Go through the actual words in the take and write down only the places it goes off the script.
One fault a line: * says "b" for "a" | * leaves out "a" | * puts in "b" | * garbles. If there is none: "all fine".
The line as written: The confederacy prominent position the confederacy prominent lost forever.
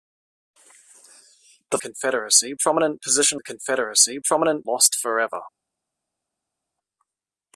all fine